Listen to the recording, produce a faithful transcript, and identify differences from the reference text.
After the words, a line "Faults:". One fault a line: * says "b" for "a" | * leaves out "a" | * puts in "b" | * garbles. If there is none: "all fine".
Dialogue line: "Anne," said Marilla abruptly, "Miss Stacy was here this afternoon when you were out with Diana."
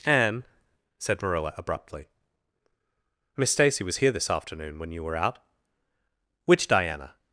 "Anne," said Marilla abruptly, "Miss Stacy was here this afternoon when you were out which Diana."
Faults:
* says "which" for "with"